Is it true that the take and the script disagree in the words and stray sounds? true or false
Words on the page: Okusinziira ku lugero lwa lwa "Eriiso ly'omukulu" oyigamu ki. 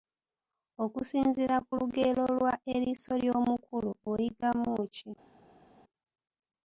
true